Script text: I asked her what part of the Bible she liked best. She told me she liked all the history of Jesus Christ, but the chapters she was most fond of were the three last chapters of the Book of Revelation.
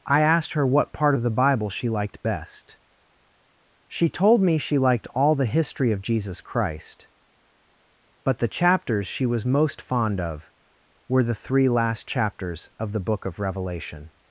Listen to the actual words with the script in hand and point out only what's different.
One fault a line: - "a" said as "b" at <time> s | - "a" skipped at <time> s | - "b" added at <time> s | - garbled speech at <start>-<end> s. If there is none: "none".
none